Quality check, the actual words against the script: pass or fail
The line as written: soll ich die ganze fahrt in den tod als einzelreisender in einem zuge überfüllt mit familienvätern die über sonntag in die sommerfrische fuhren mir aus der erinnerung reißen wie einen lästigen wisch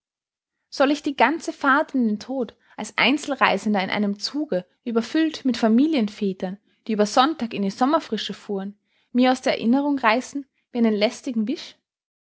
pass